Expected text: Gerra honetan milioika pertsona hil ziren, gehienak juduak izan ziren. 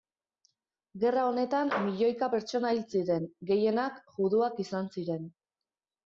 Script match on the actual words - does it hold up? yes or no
yes